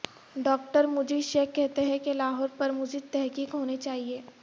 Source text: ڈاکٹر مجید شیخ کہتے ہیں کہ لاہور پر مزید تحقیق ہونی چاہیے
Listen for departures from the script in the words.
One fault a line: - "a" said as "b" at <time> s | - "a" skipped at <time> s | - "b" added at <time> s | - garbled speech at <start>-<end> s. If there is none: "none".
none